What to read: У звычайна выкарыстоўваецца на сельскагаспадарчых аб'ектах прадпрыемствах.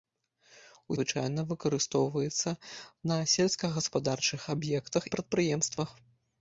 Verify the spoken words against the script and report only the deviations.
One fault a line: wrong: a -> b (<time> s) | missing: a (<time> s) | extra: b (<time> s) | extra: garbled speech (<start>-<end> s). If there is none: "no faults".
no faults